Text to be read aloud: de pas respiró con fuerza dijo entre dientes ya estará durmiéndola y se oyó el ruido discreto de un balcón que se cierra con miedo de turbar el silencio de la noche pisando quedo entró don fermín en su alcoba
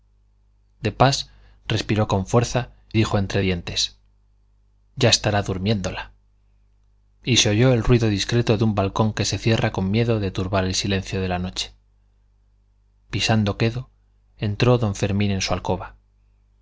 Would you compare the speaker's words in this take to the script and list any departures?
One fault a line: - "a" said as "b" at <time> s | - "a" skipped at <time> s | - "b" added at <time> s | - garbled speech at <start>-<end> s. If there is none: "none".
none